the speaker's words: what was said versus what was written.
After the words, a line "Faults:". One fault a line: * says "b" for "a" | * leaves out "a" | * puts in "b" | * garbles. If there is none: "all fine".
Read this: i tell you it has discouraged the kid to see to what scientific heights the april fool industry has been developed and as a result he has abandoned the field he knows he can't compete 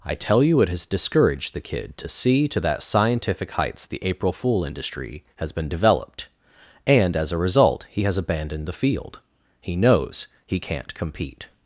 i tell you it has discouraged the kid to see to that scientific heights the april fool industry has been developed and as a result he has abandoned the field he knows he can't compete
Faults:
* says "that" for "what"